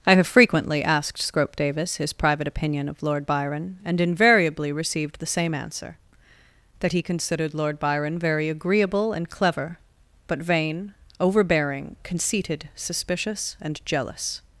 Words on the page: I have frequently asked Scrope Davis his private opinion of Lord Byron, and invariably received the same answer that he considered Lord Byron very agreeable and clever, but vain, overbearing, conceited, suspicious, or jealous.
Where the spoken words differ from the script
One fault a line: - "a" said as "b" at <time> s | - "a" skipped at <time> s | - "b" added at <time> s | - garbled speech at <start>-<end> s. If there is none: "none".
- "or" said as "and" at 13.6 s